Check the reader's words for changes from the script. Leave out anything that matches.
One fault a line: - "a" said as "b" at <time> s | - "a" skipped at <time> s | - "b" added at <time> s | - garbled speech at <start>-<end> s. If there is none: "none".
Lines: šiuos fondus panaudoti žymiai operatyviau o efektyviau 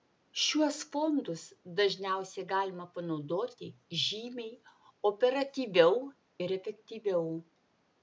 - "dažniausiai galima" added at 1.8 s
- "o" said as "ir" at 6.5 s